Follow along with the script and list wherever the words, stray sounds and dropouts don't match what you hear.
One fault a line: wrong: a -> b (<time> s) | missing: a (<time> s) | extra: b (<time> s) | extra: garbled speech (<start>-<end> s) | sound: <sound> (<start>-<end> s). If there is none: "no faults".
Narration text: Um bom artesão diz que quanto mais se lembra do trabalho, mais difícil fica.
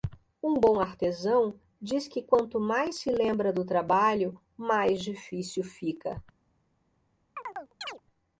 sound: chirp (7.4-8.0 s)